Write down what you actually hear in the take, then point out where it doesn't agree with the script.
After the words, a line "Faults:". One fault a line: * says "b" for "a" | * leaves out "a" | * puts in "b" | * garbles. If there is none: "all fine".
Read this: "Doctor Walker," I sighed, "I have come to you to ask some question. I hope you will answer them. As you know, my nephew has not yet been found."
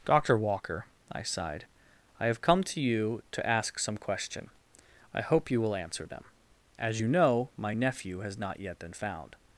"Doctor Walker," I sighed, "I have come to you to ask some question. I hope you will answer them. As you know, my nephew has not yet been found."
Faults:
all fine